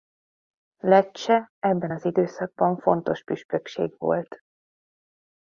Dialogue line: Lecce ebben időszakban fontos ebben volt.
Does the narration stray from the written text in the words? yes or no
yes